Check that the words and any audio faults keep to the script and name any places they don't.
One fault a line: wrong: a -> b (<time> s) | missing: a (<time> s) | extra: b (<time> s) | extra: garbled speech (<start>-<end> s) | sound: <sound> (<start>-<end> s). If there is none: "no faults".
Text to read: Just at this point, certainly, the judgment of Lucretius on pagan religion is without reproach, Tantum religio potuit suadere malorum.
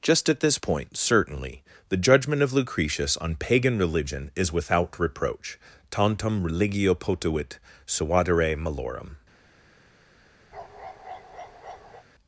sound: bark (10.5-12.1 s)